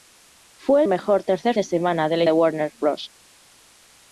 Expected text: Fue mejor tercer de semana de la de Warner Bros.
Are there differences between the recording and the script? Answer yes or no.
no